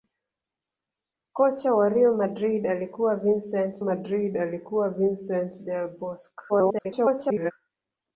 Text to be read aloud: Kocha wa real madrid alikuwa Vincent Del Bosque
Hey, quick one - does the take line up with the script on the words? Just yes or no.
no